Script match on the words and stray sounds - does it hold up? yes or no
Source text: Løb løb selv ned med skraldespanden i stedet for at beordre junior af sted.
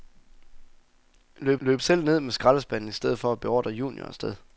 yes